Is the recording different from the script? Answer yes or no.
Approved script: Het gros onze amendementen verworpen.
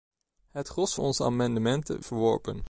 no